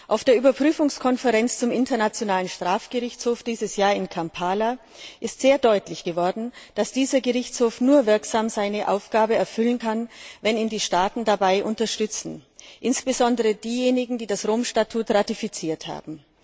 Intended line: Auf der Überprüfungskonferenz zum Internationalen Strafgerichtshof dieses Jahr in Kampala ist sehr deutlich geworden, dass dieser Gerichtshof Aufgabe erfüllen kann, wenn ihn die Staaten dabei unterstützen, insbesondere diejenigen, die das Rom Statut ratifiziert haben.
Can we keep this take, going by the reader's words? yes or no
no